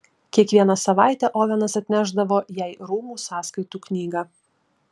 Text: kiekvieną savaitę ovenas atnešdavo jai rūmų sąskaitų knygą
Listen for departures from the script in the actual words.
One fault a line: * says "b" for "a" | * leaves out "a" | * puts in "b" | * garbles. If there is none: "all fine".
all fine